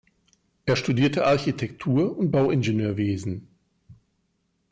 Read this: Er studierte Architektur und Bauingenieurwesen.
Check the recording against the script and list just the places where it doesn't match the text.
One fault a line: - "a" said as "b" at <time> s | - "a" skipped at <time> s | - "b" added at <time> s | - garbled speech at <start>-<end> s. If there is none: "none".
none